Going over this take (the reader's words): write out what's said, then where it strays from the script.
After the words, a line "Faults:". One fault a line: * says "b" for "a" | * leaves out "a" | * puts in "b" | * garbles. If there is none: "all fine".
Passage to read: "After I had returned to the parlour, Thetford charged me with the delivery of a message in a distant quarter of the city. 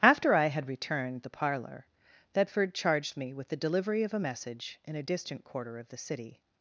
"After I had returned the parlour, Thetford charged me with the delivery of a message in a distant quarter of the city.
Faults:
* leaves out "to"